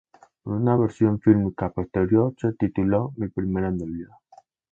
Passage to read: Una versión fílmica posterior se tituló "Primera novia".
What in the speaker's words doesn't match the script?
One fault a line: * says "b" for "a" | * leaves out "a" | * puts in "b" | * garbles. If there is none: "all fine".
* puts in "Mi"